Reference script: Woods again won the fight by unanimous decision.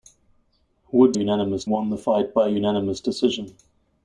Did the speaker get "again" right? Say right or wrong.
wrong